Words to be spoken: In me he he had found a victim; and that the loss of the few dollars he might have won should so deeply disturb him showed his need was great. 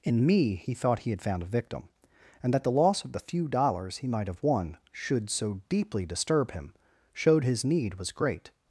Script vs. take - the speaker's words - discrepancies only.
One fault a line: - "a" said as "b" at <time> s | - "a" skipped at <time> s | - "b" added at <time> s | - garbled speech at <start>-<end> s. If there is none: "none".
- "thought" added at 0.7 s